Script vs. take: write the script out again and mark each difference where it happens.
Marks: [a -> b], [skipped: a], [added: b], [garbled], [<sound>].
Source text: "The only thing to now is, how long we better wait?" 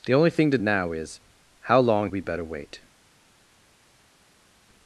"The only thing to now is, how long we better wait?"